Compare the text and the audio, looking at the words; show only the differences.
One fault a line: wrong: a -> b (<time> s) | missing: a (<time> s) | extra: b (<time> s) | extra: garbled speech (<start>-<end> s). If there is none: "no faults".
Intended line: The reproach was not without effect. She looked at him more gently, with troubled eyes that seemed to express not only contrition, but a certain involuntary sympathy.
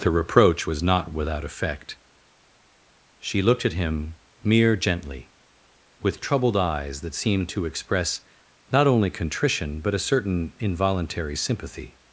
wrong: more -> mere (4.4 s)